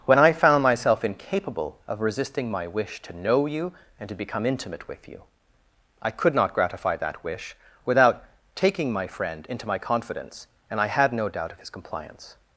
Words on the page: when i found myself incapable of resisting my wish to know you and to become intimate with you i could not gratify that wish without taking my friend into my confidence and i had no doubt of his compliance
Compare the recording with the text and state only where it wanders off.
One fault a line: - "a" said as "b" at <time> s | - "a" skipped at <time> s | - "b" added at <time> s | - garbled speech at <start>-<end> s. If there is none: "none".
none